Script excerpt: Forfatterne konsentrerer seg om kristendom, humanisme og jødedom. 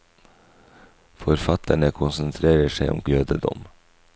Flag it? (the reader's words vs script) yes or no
yes